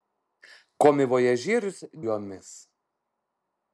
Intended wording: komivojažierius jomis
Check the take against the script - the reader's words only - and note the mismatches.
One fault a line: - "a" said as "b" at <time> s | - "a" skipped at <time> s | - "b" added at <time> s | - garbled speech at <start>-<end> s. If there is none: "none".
none